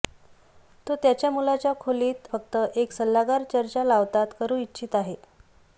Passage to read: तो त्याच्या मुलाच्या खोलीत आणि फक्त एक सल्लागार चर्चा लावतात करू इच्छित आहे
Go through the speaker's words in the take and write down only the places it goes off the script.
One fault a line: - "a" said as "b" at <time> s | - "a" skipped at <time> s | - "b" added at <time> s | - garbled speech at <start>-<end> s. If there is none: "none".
- "आणि" skipped at 2.3 s